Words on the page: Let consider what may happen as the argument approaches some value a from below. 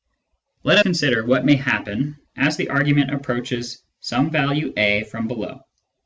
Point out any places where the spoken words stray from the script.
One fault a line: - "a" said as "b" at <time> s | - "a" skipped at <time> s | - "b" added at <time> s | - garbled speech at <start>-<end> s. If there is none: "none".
none